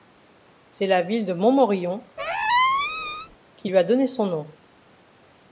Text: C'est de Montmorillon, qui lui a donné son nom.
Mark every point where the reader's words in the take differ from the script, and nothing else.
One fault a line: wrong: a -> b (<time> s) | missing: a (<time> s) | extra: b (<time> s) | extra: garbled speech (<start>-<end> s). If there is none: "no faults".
extra: la ville (0.9 s)